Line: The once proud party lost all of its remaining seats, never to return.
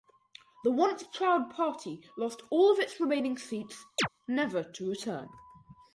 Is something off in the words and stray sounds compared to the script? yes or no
yes